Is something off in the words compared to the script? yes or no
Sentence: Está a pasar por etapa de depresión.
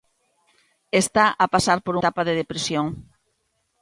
no